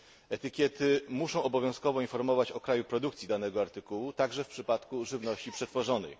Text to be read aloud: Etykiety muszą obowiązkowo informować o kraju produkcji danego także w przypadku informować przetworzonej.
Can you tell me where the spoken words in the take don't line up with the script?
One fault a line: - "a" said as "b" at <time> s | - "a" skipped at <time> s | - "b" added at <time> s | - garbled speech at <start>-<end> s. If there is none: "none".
- "artykułu" added at 3.6 s
- "informować" said as "żywności" at 5.1 s